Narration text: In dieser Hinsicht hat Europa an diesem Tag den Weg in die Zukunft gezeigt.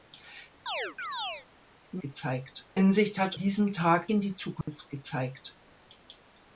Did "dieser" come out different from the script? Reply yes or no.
yes